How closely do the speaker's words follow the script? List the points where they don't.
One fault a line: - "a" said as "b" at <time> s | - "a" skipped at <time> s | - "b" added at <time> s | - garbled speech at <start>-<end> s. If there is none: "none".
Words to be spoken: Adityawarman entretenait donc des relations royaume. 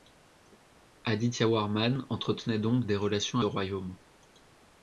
none